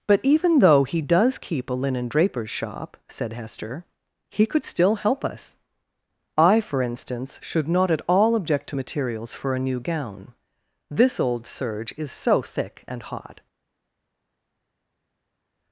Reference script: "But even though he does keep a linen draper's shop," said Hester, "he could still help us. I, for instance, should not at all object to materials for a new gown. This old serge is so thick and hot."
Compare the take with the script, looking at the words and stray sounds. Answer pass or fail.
pass